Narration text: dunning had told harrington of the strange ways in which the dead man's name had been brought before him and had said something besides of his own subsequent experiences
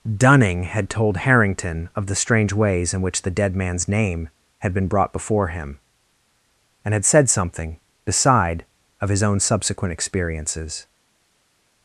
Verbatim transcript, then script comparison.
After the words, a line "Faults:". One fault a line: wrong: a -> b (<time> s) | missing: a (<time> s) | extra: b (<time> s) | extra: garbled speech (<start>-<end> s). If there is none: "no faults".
dunning had told harrington of the strange ways in which the dead man's name had been brought before him and had said something beside of his own subsequent experiences
Faults:
wrong: besides -> beside (8.1 s)